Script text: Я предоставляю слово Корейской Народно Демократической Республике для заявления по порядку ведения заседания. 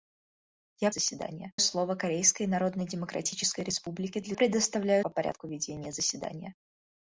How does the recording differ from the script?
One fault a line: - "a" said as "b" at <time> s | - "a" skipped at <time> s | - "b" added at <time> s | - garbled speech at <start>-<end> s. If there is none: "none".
- "предоставляю" said as "заседания" at 0.9 s
- "заявления" said as "предоставляю" at 4.3 s